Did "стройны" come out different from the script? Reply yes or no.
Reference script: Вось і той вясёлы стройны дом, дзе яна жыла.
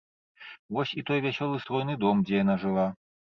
no